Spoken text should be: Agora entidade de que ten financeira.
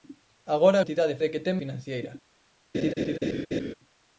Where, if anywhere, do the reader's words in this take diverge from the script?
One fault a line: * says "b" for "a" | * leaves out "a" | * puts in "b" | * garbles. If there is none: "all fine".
all fine